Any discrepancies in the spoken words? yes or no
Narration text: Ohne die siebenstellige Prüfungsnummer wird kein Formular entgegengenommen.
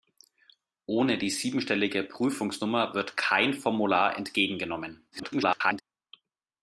yes